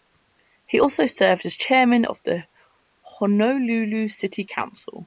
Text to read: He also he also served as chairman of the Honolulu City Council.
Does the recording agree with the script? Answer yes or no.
no